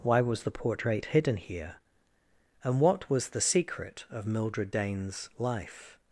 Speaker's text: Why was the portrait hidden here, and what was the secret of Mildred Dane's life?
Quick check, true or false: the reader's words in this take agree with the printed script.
true